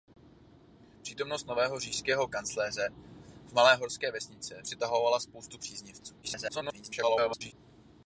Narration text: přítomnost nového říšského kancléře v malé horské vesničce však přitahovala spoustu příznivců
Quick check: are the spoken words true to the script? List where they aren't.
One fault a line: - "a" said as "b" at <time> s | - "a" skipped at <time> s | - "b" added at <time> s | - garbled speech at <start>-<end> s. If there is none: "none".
- "však" skipped at 4.6 s
- garbled speech at 6.2-7.5 s